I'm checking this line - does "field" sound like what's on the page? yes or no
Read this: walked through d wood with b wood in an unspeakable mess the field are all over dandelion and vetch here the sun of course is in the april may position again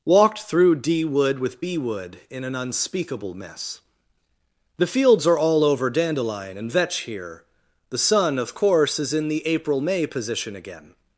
no